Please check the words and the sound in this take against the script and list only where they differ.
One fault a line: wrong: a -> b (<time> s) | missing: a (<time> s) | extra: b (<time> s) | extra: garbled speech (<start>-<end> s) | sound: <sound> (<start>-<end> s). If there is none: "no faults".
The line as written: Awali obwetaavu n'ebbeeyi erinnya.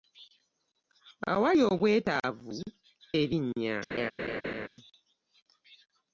missing: n'ebbeeyi (2.5 s)
sound: laugh (3.9-4.7 s)